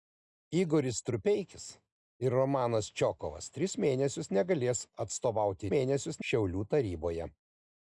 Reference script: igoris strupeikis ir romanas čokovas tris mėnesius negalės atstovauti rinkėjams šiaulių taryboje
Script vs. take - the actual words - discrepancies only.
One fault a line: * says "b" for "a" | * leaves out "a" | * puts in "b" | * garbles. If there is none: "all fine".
* says "mėnesius" for "rinkėjams"